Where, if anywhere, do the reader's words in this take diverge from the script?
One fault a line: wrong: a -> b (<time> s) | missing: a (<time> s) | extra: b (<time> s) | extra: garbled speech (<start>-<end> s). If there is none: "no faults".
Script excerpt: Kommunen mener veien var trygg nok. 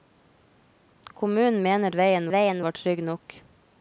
extra: veien (2.3 s)